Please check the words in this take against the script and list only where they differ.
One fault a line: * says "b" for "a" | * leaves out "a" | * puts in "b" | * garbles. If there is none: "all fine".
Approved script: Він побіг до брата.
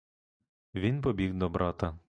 all fine